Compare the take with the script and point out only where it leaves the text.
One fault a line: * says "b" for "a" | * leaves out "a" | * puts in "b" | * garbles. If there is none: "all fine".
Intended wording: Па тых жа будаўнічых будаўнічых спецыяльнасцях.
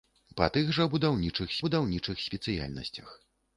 all fine